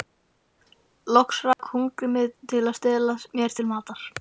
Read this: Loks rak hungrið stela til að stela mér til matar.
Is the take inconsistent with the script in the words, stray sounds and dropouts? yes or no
yes